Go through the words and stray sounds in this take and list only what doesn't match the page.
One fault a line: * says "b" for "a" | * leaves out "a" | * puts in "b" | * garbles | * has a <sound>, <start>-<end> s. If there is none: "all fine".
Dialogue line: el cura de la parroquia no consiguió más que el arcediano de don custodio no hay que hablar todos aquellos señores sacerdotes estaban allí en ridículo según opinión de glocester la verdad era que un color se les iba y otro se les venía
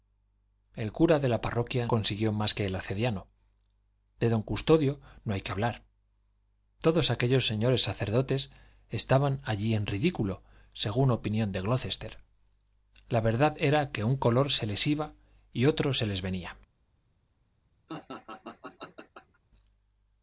* leaves out "no"
* has a laugh, 17.9-19.4 s